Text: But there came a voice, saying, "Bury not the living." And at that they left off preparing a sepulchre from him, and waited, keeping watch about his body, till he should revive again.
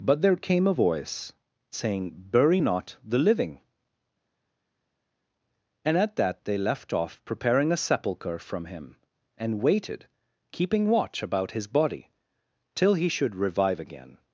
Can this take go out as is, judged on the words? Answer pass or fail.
pass